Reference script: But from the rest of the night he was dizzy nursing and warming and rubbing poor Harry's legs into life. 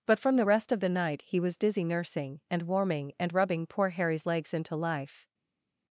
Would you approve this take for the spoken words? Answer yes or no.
yes